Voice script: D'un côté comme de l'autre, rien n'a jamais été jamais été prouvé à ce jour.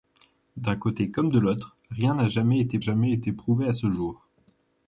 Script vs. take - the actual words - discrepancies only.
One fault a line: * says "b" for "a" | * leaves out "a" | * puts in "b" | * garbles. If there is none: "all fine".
all fine